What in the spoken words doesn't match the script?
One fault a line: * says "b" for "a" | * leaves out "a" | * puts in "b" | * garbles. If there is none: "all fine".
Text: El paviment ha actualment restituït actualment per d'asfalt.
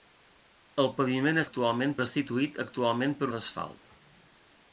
all fine